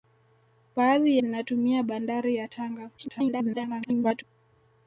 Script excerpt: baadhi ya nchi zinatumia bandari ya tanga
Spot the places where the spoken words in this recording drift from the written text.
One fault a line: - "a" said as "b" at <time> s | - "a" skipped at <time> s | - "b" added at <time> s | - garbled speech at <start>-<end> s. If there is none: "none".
- "ya nchi" skipped at 1.2 s
- garbled speech at 3.0-4.2 s